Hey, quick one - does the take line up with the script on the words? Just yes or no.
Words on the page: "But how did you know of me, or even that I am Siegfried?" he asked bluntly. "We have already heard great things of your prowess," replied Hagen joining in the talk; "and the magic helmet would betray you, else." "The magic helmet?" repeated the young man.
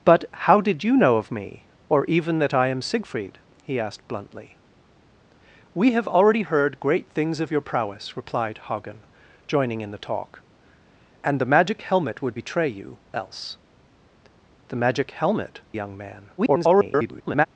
no